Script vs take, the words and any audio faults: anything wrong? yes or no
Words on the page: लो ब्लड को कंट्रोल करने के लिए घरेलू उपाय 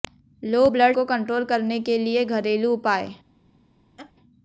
yes